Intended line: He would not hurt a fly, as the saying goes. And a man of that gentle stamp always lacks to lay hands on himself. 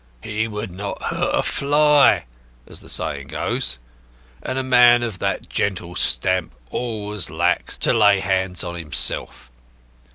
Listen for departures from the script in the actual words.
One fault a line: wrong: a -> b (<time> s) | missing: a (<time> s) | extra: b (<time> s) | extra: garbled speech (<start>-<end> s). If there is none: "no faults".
no faults